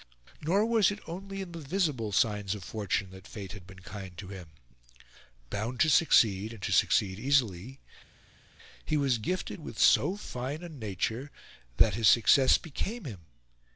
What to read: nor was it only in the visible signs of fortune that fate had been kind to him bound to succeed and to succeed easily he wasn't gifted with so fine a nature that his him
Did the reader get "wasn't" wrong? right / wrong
wrong